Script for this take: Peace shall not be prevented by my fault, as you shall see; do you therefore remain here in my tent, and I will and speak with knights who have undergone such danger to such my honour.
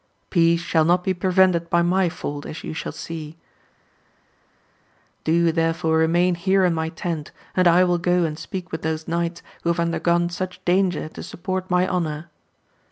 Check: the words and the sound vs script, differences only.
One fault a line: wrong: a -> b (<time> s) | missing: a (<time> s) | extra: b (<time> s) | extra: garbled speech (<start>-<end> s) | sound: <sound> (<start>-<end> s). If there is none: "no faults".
extra: go (8.0 s)
extra: those (8.8 s)
wrong: such -> support (11.2 s)